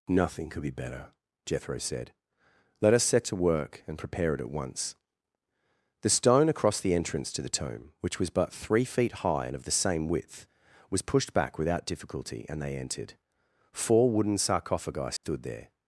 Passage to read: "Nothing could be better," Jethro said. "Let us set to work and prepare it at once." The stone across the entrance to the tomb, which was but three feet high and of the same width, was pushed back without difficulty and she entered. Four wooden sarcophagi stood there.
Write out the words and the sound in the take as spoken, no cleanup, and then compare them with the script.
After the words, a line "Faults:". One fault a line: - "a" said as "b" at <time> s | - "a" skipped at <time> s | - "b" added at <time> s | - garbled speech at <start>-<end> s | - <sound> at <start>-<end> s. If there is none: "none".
"Nothing could be better," Jethro said. "Let us set to work and prepare it at once." The stone across the entrance to the tomb, which was but three feet high and of the same width, was pushed back without difficulty and they entered. Four wooden sarcophagi stood there.
Faults:
- "she" said as "they" at 12.6 s
- dropout at 15.2-15.2 s